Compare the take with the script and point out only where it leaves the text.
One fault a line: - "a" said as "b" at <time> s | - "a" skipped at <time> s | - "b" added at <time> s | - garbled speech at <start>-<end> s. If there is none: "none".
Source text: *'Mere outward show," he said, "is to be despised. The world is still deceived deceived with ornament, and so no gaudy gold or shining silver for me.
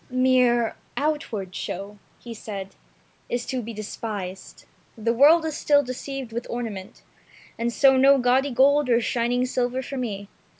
- "deceived" skipped at 6.3 s